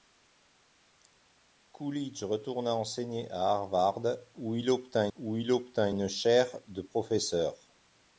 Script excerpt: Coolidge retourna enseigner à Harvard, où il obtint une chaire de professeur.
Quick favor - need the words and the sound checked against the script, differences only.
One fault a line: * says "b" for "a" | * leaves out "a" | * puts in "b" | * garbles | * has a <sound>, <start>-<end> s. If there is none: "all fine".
* puts in "où il obtint"